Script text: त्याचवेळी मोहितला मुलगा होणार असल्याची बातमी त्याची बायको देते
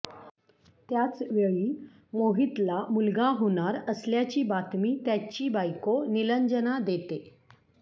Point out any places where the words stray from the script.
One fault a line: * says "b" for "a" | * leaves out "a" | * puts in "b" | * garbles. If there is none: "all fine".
* puts in "निलंजना"